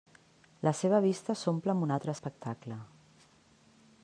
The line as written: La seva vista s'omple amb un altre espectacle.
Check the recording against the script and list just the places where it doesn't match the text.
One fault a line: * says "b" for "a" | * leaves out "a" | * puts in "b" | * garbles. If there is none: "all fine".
all fine